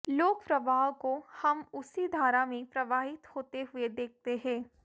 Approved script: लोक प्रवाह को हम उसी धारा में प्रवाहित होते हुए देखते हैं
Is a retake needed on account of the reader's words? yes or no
no